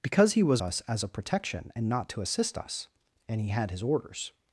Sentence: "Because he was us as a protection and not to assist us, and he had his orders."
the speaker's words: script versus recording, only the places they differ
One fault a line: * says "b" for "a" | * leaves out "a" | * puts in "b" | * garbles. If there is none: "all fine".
all fine